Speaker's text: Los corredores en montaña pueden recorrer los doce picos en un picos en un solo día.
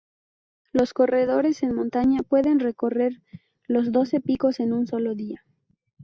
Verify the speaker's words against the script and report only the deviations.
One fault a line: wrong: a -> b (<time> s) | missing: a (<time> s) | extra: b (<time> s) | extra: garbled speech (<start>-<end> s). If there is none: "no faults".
missing: picos en un (4.9 s)